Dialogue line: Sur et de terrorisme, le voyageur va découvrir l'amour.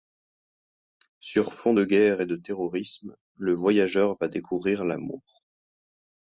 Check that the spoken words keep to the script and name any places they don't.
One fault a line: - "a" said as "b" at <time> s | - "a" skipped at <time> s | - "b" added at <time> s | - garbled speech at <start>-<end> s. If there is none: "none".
- "fond de guerre" added at 1.5 s